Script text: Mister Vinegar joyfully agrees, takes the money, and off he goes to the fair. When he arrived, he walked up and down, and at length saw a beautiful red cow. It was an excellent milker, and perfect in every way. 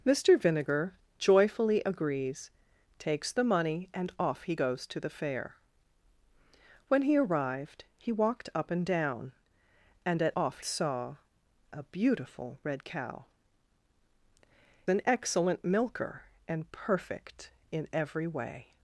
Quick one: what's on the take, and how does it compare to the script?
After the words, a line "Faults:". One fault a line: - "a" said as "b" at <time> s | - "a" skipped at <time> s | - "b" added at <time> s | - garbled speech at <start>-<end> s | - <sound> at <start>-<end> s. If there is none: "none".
Mister Vinegar joyfully agrees, takes the money, and off he goes to the fair. When he arrived, he walked up and down, and at off saw a beautiful red cow. An excellent milker, and perfect in every way.
Faults:
- "length" said as "off" at 10.3 s
- "It was" skipped at 13.3 s